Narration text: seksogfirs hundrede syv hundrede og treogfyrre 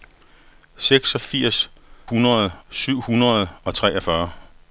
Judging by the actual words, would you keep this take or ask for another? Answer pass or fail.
pass